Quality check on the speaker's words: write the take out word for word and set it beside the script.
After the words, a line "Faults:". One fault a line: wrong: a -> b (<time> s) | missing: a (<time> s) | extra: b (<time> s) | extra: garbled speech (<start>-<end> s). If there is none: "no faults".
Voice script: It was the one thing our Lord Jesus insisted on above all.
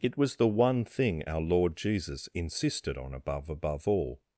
It was the one thing our Lord Jesus insisted on above above all.
Faults:
extra: above (3.5 s)